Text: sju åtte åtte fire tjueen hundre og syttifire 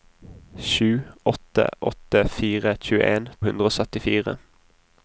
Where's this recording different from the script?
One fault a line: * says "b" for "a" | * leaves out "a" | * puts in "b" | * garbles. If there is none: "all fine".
all fine